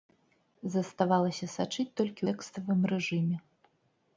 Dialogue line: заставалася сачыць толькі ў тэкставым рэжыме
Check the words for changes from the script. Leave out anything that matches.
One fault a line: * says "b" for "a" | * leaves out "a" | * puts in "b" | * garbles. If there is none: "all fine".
* leaves out "ў"